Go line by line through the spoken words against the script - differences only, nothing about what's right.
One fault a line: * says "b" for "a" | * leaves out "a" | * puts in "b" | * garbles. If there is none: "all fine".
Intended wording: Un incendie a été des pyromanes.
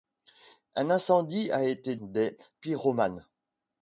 all fine